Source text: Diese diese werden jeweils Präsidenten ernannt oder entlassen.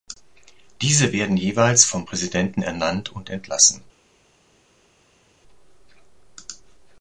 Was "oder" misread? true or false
true